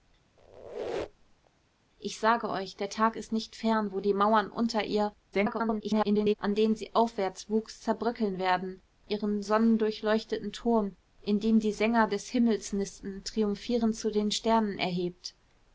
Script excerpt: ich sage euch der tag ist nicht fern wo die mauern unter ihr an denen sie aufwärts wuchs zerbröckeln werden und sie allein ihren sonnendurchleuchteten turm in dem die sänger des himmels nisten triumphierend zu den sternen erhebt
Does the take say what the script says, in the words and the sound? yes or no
no